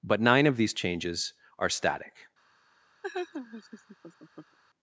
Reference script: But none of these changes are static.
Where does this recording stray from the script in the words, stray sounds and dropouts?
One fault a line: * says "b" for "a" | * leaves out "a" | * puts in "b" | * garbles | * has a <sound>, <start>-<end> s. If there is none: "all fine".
* says "nine" for "none"
* has a laugh, 3.0-4.6 s